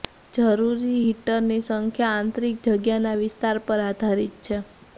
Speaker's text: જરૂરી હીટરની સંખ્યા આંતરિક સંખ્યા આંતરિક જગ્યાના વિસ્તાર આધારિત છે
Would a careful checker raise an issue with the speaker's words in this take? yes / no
yes